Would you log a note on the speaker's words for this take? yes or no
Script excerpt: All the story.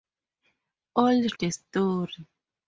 no